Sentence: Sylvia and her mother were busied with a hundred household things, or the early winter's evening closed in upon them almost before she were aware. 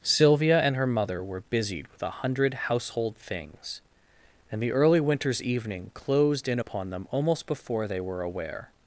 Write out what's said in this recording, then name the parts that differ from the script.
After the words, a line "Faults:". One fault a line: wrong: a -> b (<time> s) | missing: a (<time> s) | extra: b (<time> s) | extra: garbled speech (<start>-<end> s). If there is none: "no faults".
Sylvia and her mother were busied with a hundred household things, and the early winter's evening closed in upon them almost before they were aware.
Faults:
wrong: or -> and (4.5 s)
wrong: she -> they (7.9 s)